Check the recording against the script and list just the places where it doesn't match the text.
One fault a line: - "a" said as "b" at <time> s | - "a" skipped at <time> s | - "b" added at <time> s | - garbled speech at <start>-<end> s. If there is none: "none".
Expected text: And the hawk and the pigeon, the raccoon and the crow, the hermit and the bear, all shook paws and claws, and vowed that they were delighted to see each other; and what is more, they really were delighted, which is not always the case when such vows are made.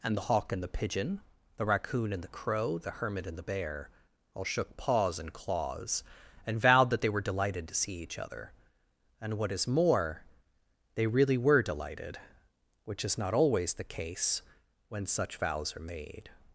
none